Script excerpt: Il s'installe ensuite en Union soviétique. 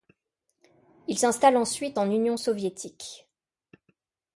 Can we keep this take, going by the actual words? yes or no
yes